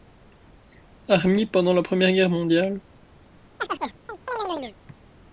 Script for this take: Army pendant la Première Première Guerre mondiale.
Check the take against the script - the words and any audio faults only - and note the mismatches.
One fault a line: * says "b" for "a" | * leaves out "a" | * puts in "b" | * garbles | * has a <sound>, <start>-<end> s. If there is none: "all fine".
* leaves out "Première"
* has a chirp, 3.6-4.8 s